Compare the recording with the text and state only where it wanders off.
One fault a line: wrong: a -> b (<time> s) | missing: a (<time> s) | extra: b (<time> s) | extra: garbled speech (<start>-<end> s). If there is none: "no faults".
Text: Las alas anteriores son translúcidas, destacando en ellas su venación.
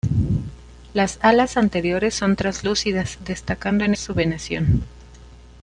missing: ellas (3.9 s)